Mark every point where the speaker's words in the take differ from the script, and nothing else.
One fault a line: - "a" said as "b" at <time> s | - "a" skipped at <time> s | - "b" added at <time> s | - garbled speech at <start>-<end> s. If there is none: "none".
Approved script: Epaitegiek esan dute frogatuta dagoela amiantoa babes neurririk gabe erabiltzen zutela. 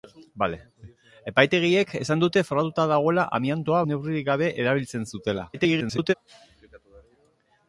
- "babes" skipped at 3.8 s
- garbled speech at 5.5-6.1 s